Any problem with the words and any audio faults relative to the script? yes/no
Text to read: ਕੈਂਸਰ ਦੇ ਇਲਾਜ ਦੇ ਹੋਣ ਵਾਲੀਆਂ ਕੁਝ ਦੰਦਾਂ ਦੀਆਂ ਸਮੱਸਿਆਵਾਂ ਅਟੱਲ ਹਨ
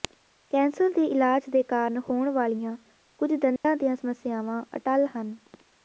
yes